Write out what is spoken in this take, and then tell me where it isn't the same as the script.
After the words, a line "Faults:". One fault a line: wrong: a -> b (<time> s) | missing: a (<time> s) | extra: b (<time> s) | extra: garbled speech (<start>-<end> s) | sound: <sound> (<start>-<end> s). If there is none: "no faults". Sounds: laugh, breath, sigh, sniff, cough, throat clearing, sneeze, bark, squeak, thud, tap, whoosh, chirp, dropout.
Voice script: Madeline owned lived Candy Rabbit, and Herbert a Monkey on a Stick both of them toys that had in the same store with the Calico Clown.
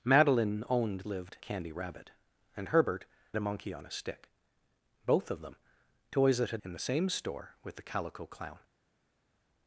Madeline owned lived Candy Rabbit, and Herbert a Monkey on a Stick both of them toys that had in the same store with the Calico Clown.
Faults:
no faults